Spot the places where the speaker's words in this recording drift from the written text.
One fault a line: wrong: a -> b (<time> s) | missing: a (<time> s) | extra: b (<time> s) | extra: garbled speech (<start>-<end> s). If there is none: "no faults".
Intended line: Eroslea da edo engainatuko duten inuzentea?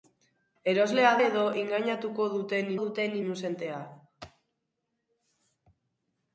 missing: da (1.1 s)
extra: duten (2.8 s)